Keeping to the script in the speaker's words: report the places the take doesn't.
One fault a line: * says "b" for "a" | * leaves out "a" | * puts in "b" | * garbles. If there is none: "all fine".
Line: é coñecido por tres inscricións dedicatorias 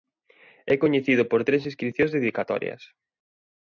all fine